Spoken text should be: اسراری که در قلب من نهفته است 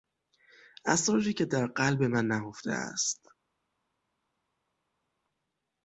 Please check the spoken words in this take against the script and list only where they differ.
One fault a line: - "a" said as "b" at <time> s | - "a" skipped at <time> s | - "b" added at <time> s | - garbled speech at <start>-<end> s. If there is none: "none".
none